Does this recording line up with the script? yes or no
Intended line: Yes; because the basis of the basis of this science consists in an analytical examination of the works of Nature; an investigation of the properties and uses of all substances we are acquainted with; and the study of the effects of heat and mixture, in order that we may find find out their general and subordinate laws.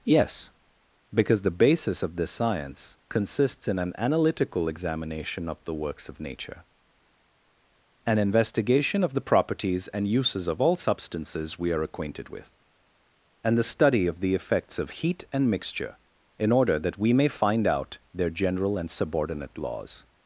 no